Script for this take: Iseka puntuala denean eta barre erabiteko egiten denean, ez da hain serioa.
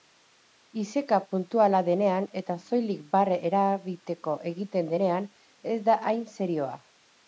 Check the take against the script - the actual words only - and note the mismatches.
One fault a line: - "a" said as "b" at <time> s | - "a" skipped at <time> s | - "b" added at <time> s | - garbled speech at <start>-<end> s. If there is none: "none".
- "soilik" added at 2.6 s